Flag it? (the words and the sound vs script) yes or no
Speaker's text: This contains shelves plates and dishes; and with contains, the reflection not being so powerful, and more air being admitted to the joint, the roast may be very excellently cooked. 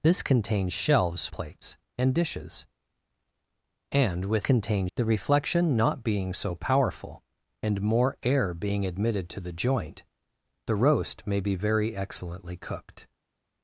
no